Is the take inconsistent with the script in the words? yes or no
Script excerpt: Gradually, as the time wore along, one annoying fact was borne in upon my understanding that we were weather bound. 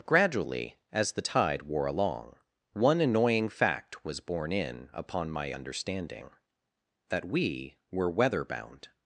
yes